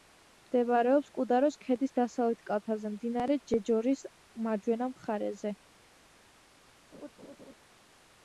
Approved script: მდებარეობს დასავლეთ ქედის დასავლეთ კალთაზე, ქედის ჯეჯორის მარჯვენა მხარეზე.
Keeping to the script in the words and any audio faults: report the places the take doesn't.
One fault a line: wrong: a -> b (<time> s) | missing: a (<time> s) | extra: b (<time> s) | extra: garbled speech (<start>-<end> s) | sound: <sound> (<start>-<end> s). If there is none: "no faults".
wrong: დასავლეთ -> კუდაროს (1.2 s)
wrong: ქედის -> მდინარე (2.9 s)
sound: laugh (6.9-7.5 s)